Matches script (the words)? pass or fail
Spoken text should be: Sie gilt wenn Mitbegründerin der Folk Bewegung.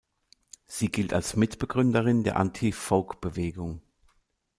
fail